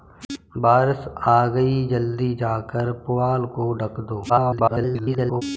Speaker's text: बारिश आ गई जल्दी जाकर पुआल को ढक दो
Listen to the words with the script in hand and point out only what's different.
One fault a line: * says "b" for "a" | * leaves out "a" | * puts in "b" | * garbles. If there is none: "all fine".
* garbles